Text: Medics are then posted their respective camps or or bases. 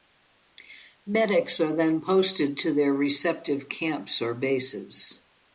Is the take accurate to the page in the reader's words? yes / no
no